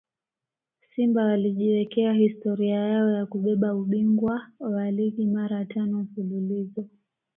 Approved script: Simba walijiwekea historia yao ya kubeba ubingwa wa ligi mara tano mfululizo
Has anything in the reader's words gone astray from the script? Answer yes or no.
no